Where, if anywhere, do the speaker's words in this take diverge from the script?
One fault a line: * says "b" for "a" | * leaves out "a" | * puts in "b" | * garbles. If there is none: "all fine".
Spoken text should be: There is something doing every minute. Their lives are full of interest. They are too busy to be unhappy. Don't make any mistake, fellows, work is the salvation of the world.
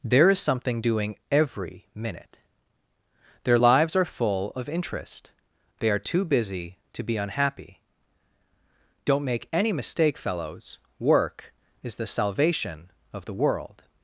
all fine